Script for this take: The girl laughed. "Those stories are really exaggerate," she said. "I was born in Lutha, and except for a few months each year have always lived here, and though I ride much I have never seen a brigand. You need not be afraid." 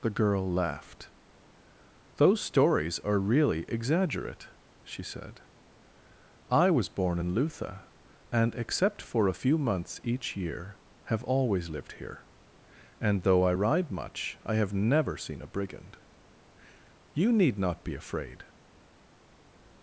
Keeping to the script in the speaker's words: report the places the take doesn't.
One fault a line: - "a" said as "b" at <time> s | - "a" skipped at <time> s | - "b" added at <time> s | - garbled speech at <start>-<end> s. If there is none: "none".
none